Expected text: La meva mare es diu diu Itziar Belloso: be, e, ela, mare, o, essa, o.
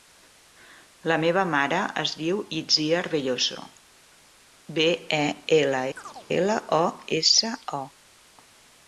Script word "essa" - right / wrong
right